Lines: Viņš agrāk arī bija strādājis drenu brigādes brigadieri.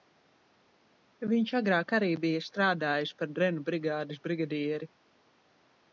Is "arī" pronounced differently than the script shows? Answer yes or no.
no